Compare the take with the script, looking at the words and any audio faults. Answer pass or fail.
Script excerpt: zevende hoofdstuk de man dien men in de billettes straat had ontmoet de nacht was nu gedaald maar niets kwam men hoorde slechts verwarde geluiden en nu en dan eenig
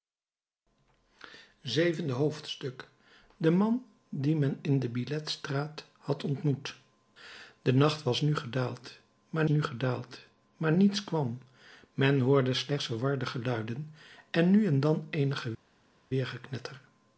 fail